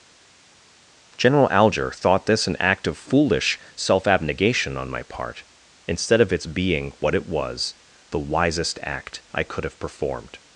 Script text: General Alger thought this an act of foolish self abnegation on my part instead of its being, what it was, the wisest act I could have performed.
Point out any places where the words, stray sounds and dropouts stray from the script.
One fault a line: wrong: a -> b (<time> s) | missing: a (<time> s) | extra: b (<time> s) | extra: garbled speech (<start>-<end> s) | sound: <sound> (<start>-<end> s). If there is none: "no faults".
no faults